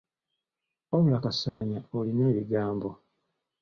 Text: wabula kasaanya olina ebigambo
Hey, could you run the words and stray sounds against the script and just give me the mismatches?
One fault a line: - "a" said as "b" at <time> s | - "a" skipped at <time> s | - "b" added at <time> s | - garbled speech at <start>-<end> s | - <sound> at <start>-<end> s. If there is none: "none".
- dropout at 1.5-1.6 s